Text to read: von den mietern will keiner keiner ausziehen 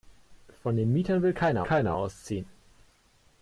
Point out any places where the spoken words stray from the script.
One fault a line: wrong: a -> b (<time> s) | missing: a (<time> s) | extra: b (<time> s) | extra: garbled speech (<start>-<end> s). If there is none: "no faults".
no faults